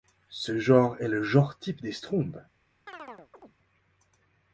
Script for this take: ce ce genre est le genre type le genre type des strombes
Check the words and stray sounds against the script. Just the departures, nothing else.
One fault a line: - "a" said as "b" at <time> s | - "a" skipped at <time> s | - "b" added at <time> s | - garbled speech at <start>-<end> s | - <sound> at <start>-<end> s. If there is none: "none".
- "ce" skipped at 0.6 s
- "le genre type" skipped at 1.8 s
- chirp at 2.9-3.6 s